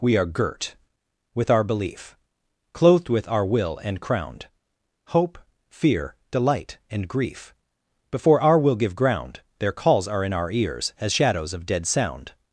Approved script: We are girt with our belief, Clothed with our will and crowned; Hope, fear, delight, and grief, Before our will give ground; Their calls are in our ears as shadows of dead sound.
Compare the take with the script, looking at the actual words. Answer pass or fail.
pass